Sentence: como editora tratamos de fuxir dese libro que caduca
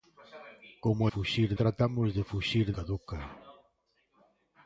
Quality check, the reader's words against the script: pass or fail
fail